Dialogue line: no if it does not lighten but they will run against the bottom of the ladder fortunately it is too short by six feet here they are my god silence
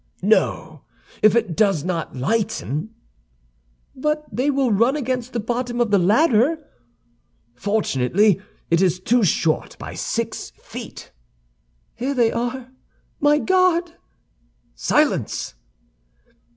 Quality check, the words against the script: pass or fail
pass